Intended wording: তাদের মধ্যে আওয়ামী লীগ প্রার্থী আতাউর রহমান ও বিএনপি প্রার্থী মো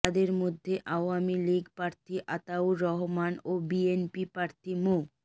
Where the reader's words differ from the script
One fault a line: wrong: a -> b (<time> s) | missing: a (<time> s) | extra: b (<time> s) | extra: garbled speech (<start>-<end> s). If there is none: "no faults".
no faults